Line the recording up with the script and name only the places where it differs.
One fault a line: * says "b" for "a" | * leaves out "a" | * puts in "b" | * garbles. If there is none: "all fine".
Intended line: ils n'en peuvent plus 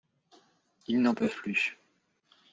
all fine